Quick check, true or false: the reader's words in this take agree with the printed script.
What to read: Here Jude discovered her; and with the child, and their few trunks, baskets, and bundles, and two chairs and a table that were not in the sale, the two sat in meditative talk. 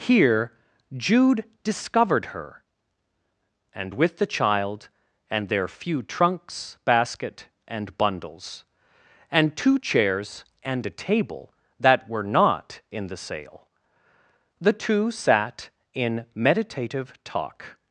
false